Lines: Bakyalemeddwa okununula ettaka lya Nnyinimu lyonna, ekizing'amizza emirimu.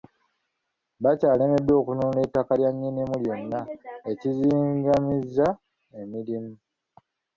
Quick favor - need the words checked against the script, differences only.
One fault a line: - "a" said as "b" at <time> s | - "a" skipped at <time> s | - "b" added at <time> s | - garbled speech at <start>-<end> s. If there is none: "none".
none